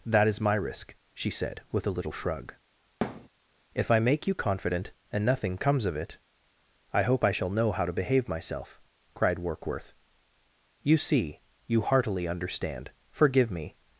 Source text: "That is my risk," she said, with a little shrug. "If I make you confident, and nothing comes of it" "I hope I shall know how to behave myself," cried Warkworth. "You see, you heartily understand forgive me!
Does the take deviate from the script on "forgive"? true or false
false